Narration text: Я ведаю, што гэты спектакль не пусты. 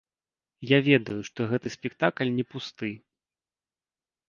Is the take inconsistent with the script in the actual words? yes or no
no